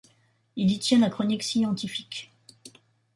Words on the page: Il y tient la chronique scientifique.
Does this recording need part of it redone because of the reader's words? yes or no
no